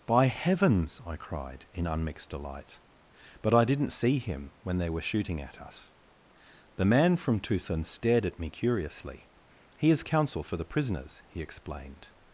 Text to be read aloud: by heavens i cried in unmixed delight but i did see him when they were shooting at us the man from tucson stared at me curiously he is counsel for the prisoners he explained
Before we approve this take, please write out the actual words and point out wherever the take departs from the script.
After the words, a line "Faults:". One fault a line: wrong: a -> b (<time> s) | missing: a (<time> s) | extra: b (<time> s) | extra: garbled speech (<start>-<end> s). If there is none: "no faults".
by heavens i cried in unmixed delight but i didn't see him when they were shooting at us the man from tucson stared at me curiously he is counsel for the prisoners he explained
Faults:
wrong: did -> didn't (3.6 s)